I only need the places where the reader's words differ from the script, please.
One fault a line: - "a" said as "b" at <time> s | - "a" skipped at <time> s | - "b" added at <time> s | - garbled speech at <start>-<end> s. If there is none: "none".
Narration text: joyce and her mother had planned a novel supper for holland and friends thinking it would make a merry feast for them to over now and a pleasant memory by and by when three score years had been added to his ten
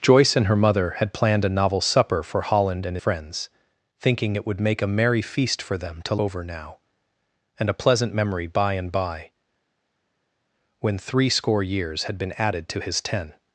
none